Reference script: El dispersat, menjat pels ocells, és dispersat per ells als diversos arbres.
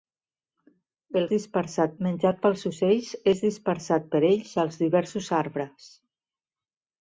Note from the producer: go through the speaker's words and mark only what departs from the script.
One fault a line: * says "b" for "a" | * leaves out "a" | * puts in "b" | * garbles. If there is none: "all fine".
all fine